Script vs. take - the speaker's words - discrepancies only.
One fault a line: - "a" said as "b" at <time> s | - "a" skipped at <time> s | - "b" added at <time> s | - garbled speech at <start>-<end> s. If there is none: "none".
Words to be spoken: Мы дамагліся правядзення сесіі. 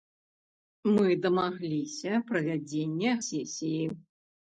none